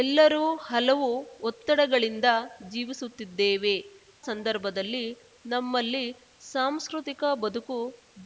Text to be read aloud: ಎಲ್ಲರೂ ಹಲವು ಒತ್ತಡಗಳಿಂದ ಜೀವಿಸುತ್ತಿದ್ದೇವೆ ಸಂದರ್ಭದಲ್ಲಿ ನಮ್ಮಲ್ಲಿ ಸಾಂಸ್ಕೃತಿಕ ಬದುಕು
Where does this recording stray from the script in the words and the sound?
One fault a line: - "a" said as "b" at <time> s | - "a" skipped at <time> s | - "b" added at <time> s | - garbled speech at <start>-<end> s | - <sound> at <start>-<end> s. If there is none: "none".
none